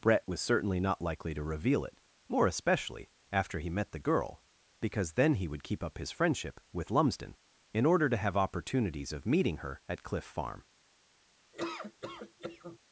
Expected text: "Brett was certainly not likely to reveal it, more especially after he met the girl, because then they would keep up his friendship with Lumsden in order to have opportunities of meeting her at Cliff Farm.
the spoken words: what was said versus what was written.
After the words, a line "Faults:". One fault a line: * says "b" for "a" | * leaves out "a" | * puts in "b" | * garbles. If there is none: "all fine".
"Brett was certainly not likely to reveal it, more especially after he met the girl, because then he would keep up his friendship with Lumsden in order to have opportunities of meeting her at Cliff Farm.
Faults:
* says "he" for "they"